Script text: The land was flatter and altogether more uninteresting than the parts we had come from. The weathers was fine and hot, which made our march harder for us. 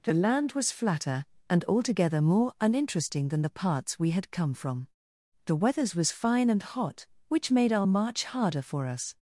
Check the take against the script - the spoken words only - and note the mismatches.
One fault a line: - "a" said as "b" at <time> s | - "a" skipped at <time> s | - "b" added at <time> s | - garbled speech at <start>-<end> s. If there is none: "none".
none